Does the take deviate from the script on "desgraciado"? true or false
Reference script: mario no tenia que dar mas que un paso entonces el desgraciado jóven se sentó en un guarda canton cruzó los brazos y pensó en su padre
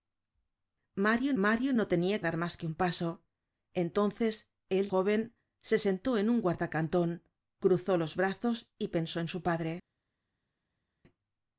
true